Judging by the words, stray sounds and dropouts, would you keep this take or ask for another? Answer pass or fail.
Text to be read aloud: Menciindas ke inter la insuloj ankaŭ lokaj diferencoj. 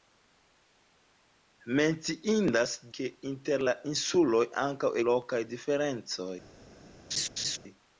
fail